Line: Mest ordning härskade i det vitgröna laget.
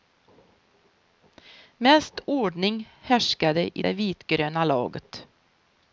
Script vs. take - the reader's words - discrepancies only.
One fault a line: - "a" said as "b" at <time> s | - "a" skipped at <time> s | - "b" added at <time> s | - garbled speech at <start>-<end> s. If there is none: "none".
none